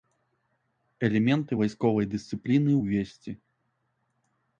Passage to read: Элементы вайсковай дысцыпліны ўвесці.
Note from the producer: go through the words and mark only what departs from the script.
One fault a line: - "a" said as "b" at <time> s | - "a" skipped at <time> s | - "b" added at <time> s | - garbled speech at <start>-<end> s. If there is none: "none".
none